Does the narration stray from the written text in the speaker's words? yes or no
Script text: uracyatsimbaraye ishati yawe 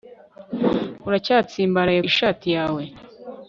no